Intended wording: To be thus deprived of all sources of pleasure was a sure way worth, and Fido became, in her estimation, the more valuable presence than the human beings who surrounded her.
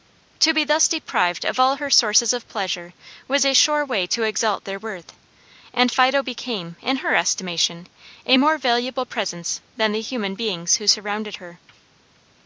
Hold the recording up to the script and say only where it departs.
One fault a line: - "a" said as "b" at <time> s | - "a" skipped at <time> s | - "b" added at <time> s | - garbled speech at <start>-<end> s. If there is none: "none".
- "her" added at 1.7 s
- "to exalt their" added at 4.1 s
- "the" said as "a" at 8.2 s